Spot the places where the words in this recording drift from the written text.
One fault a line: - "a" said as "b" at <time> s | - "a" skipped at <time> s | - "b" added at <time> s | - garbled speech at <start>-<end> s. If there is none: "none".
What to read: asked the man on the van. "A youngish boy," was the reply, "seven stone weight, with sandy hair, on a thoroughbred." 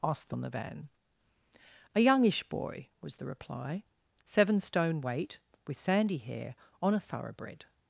- "man" skipped at 0.3 s